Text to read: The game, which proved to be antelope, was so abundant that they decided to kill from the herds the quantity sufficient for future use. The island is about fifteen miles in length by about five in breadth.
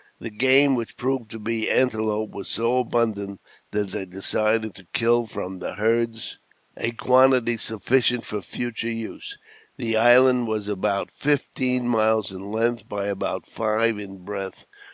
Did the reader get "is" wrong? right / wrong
wrong